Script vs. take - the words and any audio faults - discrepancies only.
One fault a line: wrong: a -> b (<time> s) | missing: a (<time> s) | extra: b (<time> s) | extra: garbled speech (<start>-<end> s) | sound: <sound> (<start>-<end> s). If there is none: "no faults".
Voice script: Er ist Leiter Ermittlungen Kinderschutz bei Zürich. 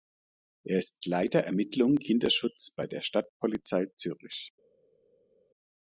extra: der Stadtpolizei (2.9 s)